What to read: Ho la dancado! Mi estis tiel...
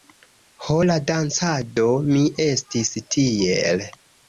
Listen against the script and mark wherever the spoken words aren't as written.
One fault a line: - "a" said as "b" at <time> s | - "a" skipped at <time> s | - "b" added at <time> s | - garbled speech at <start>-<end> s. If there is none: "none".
none